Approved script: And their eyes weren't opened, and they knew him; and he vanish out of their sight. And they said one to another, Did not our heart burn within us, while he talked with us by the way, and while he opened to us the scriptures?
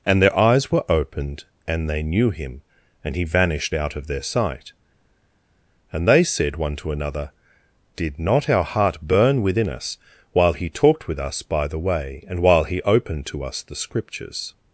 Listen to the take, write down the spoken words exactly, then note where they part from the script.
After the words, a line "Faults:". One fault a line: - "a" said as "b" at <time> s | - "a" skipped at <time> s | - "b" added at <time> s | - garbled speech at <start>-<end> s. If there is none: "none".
And their eyes were opened, and they knew him; and he vanished out of their sight. And they said one to another, Did not our heart burn within us, while he talked with us by the way, and while he opened to us the scriptures?
Faults:
- "weren't" said as "were" at 0.7 s
- "vanish" said as "vanished" at 3.2 s